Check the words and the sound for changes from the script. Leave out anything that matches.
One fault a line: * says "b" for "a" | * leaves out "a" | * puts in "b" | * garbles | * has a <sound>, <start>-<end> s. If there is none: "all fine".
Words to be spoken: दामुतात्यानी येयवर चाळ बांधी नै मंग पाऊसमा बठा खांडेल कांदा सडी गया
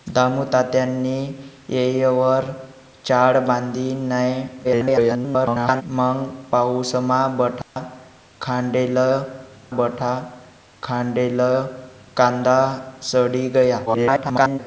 * garbles
* has a dropout, 7.6-7.8 s
* puts in "बठा खांडेल"
* garbles